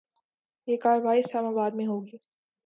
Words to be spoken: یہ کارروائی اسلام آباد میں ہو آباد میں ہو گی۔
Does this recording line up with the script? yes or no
no